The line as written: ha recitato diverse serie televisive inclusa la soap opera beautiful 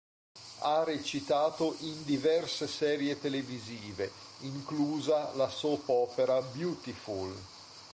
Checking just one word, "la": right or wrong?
right